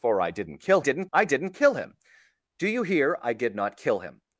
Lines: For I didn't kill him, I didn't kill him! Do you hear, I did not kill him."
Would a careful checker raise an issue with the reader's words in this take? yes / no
yes